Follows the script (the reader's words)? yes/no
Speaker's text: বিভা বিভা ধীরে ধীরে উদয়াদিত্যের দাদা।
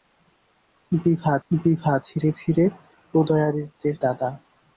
yes